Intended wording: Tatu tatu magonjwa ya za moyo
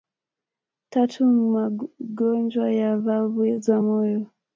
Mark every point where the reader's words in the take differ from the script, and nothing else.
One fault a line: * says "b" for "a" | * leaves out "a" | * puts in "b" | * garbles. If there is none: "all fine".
* leaves out "tatu"
* puts in "valvu"